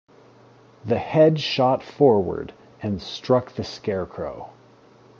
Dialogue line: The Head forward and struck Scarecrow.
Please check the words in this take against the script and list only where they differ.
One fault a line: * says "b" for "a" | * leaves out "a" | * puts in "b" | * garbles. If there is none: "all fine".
* puts in "shot"
* puts in "the"